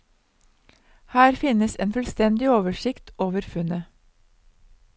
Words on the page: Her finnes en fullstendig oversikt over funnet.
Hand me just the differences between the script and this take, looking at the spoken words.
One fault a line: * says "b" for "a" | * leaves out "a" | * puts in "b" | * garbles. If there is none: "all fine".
all fine